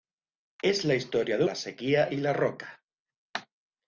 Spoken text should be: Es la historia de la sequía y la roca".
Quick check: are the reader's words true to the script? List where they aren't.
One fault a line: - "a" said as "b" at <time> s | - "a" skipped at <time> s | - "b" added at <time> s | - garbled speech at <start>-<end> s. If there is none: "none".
none